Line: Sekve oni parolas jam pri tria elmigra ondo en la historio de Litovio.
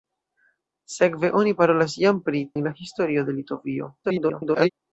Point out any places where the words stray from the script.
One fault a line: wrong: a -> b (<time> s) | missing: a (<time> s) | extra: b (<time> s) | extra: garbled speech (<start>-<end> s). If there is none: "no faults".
missing: tria elmigra ondo (2.4 s)
extra: garbled speech (4.0-4.7 s)